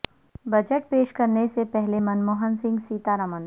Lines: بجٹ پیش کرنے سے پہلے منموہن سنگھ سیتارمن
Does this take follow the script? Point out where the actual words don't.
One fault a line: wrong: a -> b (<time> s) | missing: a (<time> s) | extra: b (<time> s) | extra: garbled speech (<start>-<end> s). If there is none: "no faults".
no faults